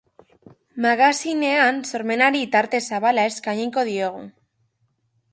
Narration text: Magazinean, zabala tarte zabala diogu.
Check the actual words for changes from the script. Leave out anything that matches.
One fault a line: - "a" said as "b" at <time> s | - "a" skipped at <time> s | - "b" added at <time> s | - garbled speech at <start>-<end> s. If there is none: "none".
- "zabala" said as "sormenari" at 1.9 s
- "eskainiko" added at 3.3 s